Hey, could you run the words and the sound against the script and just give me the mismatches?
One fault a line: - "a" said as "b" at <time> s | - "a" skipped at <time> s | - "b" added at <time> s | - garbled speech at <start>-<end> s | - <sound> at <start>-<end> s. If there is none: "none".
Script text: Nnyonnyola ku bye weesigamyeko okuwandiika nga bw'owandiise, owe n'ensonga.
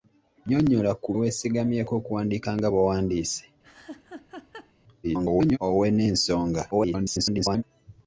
- "bye" skipped at 1.1 s
- laugh at 3.6-4.7 s
- garbled speech at 5.0-5.6 s
- garbled speech at 6.7-7.6 s